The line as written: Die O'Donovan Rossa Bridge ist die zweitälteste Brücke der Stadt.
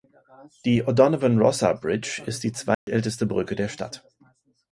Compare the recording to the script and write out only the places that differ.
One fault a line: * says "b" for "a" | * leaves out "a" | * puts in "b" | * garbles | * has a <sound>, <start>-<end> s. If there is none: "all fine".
* has a dropout, 2.7-2.9 s